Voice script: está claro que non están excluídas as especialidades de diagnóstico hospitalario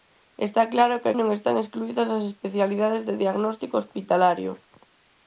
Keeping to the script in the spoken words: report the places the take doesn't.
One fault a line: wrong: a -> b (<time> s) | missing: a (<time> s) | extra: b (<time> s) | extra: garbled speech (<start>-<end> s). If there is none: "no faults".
no faults